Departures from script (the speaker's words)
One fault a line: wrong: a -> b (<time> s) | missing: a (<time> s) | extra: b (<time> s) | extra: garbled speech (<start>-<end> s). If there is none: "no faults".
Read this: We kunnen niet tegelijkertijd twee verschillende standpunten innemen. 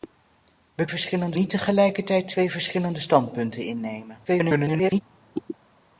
wrong: kunnen -> verschillende (0.9 s)
extra: garbled speech (4.3-5.0 s)